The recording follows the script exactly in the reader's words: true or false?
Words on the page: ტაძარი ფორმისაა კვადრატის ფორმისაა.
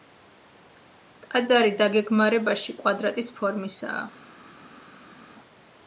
false